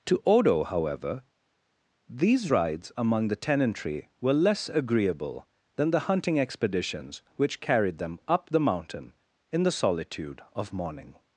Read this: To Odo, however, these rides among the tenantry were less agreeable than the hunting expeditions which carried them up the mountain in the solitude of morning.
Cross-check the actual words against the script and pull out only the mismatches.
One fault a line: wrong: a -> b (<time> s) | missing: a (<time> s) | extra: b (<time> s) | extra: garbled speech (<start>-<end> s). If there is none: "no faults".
no faults